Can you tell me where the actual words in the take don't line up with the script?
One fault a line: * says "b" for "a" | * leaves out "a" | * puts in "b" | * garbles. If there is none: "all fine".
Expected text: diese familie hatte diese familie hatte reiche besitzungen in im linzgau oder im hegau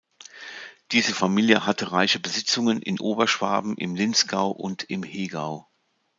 * leaves out "diese familie hatte"
* puts in "oberschwaben"
* says "und" for "oder"